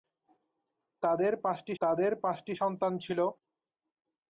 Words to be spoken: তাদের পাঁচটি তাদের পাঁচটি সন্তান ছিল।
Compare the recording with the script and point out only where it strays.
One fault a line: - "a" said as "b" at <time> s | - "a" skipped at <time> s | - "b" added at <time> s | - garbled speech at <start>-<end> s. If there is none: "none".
none